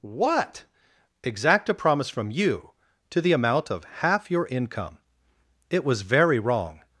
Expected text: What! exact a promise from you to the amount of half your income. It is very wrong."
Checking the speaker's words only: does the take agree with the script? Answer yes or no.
no